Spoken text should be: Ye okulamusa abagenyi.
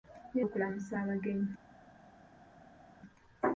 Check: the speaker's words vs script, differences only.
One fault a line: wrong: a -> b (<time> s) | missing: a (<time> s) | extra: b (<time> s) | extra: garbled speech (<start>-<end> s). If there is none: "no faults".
no faults